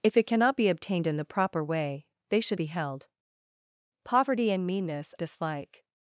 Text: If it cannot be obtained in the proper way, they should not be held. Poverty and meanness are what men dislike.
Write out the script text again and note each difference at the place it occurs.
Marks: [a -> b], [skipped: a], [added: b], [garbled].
If it cannot be obtained in the proper way, they should [skipped: not] be held. Poverty and meanness [skipped: are what men] dislike.